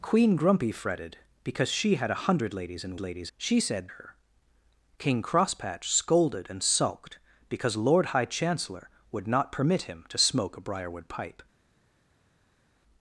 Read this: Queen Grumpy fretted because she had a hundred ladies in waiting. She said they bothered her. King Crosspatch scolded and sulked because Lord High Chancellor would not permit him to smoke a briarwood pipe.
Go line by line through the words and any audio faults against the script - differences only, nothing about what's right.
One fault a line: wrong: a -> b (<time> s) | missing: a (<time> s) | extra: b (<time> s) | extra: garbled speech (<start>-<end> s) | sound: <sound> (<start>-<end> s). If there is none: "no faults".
wrong: waiting -> ladies (3.0 s)
missing: they bothered (3.9 s)